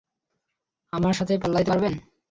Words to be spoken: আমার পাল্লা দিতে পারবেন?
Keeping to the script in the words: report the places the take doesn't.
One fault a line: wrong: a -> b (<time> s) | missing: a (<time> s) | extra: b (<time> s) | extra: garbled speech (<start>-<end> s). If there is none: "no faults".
extra: সাথে (1.2 s)